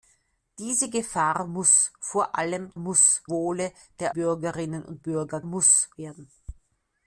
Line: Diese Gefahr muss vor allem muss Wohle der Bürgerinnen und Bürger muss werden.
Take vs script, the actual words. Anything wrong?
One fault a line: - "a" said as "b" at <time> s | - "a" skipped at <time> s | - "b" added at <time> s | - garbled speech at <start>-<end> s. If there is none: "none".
none